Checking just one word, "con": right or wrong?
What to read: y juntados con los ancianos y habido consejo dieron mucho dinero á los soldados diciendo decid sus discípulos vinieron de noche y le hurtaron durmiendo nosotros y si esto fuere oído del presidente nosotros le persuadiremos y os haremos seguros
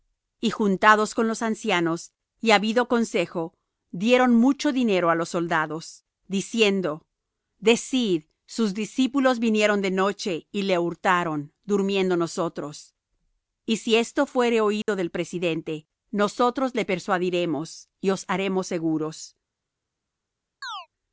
right